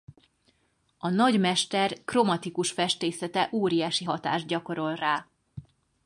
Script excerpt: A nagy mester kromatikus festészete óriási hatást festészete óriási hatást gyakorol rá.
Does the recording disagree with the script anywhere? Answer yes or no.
yes